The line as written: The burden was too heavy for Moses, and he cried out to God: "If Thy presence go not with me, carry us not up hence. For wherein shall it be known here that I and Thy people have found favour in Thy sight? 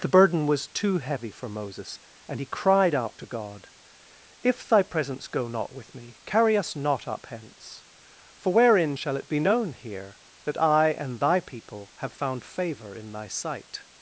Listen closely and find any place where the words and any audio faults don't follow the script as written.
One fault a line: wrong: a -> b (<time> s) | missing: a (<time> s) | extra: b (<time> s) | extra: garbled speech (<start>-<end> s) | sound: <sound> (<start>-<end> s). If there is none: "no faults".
no faults